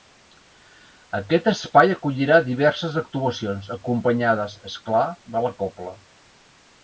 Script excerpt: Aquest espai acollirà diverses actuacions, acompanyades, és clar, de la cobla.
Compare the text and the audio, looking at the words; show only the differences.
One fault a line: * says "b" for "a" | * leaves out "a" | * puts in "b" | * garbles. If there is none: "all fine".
all fine